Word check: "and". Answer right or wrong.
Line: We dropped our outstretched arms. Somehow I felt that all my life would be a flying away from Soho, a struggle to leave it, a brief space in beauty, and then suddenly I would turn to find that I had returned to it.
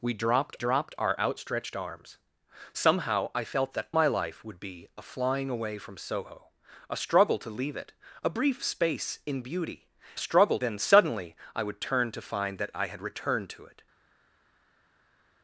wrong